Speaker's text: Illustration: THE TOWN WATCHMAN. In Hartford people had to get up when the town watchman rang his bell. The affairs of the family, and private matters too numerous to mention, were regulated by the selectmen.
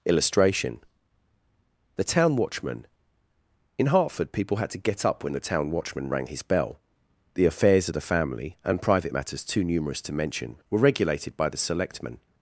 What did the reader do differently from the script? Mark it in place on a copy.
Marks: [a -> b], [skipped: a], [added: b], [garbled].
Illustration: THE TOWN WATCHMAN. In Hartford people had to get up when the town watchman rang his bell. The affairs of the family, and private matters too numerous to mention, were regulated by the selectmen.